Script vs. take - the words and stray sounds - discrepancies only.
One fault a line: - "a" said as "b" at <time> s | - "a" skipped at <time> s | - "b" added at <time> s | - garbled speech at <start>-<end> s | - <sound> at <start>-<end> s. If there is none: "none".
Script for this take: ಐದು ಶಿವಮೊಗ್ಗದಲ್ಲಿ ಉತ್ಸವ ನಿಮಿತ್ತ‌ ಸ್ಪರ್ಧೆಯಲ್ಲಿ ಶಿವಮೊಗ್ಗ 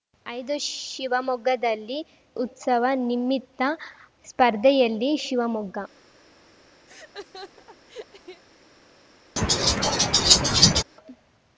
- laugh at 6.9-8.4 s
- laugh at 9.4-10.8 s